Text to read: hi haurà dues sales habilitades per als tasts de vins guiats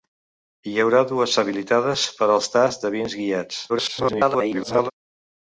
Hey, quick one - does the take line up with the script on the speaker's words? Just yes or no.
no